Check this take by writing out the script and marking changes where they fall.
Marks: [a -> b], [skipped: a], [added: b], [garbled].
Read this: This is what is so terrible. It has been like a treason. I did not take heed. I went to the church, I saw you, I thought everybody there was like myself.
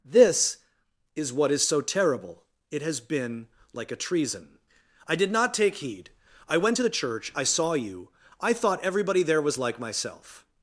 This is what is so terrible. It has been like a treason. I did not take heed. I went to the church, I saw you, I thought everybody there was like myself.